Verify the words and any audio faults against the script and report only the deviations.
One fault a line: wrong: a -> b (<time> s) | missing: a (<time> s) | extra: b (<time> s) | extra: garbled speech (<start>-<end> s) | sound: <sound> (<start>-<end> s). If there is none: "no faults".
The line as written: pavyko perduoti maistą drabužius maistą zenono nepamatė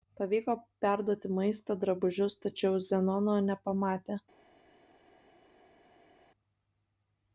wrong: maistą -> tačiau (2.5 s)